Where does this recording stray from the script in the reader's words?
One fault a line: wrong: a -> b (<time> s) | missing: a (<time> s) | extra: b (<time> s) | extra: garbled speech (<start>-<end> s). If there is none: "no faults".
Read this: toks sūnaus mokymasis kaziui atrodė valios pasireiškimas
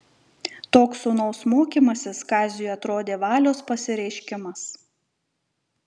no faults